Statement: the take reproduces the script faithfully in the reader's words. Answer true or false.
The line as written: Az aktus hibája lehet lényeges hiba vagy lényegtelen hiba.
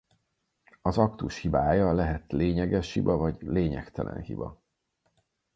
true